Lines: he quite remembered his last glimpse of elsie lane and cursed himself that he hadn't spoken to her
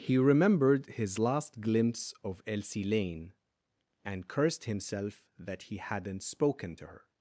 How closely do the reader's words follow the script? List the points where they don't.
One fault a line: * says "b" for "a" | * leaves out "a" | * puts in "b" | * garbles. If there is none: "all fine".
* leaves out "quite"